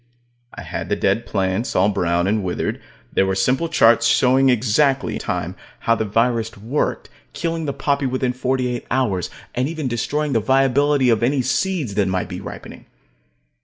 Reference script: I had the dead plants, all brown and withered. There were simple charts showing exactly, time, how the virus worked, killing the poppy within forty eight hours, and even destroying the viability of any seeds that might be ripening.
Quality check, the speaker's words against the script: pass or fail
pass